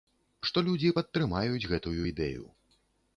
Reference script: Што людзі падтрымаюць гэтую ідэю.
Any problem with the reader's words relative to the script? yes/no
no